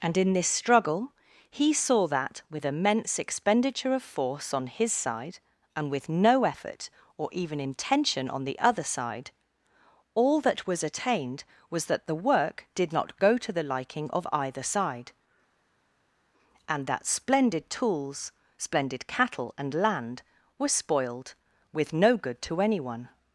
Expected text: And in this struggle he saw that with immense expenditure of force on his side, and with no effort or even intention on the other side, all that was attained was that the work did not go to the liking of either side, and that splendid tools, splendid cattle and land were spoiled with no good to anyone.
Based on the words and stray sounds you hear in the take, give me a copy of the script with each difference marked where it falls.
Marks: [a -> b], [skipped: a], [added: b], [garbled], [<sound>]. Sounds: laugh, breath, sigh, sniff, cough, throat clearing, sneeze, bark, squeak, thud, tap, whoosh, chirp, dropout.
And in this struggle he saw that with immense expenditure of force on his side, and with no effort or even intention on the other side, all that was attained was that the work did not go to the liking of either side, and that splendid tools, splendid cattle and land were spoiled with no good to anyone.